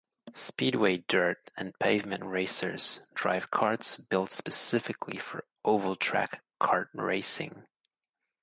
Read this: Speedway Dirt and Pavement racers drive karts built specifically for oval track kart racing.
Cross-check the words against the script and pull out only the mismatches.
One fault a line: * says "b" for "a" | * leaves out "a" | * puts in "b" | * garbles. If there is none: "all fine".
all fine